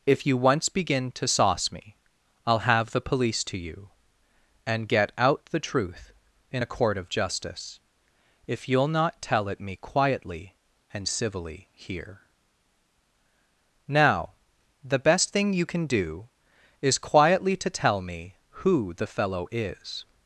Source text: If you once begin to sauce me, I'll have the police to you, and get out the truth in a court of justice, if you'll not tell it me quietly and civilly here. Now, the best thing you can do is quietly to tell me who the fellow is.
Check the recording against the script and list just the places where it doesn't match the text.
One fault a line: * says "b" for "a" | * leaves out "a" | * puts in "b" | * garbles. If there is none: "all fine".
all fine